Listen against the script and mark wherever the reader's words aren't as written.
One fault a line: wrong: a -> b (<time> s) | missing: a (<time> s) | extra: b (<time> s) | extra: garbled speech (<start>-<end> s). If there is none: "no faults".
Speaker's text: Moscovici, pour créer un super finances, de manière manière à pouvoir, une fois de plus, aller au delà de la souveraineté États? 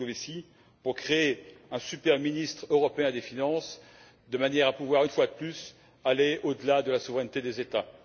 extra: ministre européen des (2.2 s)
missing: manière (4.7 s)
extra: des (7.4 s)